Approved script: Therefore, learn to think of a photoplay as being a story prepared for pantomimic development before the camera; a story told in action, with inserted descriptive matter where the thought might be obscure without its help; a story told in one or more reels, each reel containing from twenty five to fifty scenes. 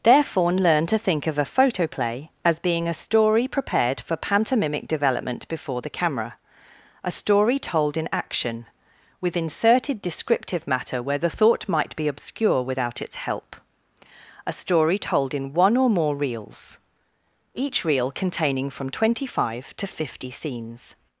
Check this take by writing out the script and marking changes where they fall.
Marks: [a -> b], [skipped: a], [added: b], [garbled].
Therefore, learn to think of a photoplay as being a story prepared for pantomimic development before the camera; a story told in action, with inserted descriptive matter where the thought might be obscure without its help; a story told in one or more reels, each reel containing from twenty five to fifty scenes.